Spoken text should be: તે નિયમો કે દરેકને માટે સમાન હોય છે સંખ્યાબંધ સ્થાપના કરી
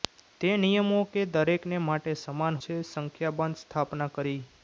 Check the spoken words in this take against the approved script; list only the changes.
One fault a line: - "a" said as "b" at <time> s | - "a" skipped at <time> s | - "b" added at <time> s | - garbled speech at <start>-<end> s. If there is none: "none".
- "હોય" skipped at 2.6 s